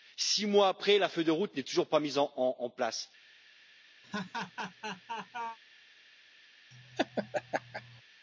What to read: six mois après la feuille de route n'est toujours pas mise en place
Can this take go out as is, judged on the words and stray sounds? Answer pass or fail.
fail